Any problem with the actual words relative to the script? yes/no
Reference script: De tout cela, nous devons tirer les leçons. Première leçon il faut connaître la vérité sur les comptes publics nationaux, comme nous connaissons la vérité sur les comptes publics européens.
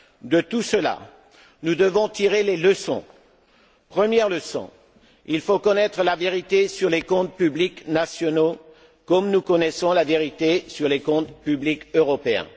no